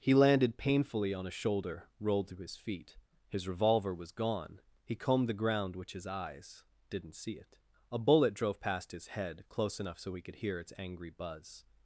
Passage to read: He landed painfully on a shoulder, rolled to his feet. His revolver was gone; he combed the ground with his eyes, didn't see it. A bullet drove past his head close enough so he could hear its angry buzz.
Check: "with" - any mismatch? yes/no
yes